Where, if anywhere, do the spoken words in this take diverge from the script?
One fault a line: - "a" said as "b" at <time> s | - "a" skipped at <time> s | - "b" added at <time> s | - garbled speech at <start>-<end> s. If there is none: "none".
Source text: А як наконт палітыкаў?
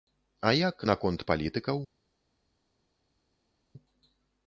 none